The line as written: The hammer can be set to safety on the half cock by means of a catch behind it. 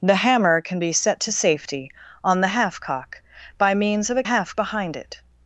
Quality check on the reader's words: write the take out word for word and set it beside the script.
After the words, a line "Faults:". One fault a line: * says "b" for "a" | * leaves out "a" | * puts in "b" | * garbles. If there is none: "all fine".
The hammer can be set to safety on the half cock by means of a half behind it.
Faults:
* says "half" for "catch"